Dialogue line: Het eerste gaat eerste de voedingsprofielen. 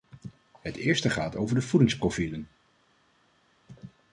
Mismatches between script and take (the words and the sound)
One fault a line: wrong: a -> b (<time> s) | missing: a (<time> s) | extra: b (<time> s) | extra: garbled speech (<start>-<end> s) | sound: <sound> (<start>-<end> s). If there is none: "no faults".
wrong: eerste -> over (1.4 s)